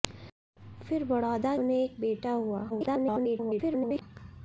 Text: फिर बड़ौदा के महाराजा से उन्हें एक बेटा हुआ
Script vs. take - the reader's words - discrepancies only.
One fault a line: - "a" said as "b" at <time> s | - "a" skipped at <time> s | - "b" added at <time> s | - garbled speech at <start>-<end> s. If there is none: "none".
- "के महाराजा से" skipped at 1.6 s
- garbled speech at 2.7-4.0 s